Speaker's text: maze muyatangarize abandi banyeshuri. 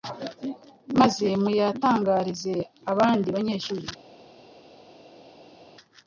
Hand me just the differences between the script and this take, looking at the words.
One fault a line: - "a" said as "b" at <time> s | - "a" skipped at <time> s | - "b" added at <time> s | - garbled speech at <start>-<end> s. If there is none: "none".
none